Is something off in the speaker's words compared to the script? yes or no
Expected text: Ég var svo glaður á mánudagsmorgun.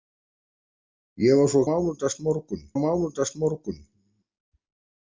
yes